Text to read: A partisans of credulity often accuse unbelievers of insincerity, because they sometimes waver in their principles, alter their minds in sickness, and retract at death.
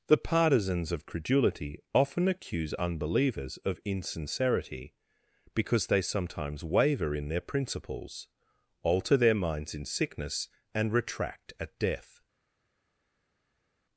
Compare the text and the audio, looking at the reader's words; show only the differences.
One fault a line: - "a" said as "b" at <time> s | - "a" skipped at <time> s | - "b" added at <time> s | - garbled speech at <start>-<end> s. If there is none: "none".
- "A" said as "The" at 0.1 s